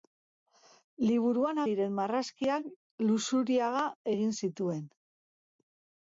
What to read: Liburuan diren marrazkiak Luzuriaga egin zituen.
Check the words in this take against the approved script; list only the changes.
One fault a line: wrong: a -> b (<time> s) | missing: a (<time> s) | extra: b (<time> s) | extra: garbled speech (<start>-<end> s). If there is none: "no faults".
no faults